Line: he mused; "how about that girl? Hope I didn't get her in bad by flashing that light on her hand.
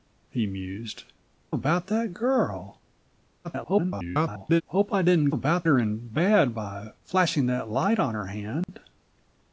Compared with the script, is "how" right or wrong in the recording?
wrong